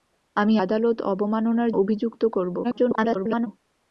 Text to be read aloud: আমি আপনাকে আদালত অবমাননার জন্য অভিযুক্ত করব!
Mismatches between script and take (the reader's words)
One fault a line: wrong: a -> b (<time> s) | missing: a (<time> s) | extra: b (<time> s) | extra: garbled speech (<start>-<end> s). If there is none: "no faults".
missing: আপনাকে (0.6 s)
missing: জন্য (1.7 s)
extra: garbled speech (2.6-3.5 s)